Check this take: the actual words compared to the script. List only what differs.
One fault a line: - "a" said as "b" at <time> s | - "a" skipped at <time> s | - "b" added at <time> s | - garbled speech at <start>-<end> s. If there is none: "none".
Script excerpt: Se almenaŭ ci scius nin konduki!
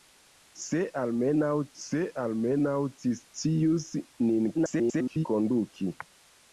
- "se almenaŭ" added at 1.8 s
- garbled speech at 4.5-5.3 s